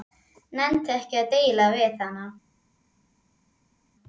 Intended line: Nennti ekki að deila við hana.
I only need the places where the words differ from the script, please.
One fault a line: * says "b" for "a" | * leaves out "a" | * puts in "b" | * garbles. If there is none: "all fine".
all fine